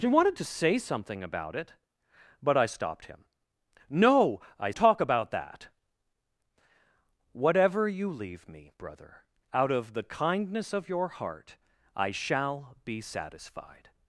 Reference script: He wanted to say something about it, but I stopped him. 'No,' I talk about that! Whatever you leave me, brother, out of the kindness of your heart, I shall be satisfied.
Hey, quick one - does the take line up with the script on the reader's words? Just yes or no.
yes